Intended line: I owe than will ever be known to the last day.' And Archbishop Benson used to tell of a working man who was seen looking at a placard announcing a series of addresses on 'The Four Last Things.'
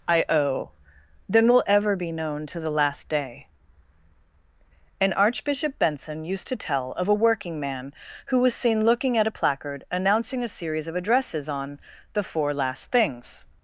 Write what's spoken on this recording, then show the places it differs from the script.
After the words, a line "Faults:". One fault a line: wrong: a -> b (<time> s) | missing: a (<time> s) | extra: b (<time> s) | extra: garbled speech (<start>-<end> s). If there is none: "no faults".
I owe than will ever be known to the last day.' And Archbishop Benson used to tell of a working man who was seen looking at a placard announcing a series of addresses on 'The Four Last Things.'
Faults:
no faults